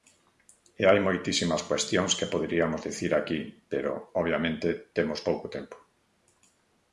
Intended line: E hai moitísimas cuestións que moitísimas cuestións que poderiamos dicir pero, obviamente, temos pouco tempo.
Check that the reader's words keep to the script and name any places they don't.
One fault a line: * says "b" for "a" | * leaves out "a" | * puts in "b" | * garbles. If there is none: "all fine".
* leaves out "moitísimas cuestións que"
* puts in "aquí"